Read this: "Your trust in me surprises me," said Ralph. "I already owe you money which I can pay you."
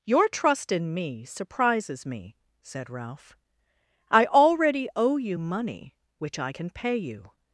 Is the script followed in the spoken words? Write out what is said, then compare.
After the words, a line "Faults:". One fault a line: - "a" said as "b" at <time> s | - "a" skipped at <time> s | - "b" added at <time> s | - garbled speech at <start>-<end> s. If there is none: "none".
"Your trust in me surprises me," said Ralph. "I already owe you money which I can pay you."
Faults:
none